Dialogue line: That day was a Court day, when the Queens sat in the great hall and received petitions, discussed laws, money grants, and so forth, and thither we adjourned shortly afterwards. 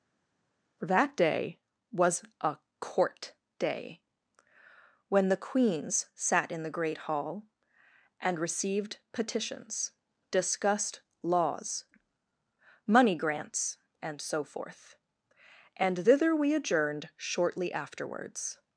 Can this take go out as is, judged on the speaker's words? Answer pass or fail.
pass